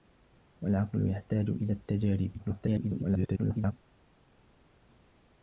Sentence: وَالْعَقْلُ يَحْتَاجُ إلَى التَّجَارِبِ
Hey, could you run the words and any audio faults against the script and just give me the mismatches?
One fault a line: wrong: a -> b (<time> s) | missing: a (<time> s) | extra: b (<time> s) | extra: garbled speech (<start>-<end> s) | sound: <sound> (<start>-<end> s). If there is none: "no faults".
extra: garbled speech (2.4-3.7 s)